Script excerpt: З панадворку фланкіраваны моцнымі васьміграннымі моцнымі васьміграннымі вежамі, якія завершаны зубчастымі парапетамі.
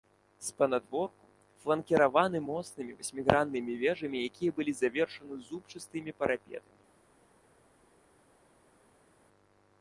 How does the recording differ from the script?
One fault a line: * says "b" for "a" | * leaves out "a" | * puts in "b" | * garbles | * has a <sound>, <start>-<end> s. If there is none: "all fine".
* leaves out "моцнымі васьміграннымі"
* puts in "былі"